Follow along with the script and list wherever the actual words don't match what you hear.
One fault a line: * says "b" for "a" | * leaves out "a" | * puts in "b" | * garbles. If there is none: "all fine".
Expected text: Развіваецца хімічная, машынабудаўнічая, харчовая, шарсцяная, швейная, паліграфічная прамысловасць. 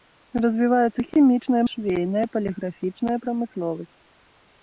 * leaves out "машынабудаўнічая харчовая шарсцяная"